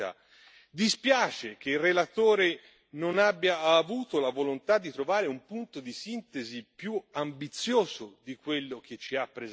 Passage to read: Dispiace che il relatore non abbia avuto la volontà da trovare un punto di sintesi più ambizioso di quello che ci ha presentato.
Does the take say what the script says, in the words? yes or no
no